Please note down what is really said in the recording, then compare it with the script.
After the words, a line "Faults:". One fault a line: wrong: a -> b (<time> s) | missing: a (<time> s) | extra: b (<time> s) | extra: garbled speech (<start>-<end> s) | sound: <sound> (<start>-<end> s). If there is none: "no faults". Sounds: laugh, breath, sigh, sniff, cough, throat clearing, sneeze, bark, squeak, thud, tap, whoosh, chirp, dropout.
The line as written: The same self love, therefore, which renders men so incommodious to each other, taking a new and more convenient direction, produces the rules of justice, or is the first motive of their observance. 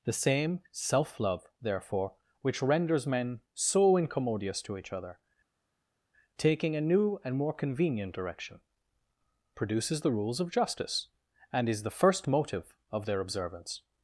The same self love, therefore, which renders men so incommodious to each other, taking a new and more convenient direction, produces the rules of justice, and is the first motive of their observance.
Faults:
wrong: or -> and (11.5 s)